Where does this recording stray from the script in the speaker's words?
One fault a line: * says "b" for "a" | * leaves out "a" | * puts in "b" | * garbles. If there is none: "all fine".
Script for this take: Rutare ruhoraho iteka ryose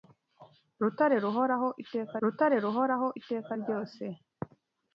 * puts in "rutare ruhoraho iteka"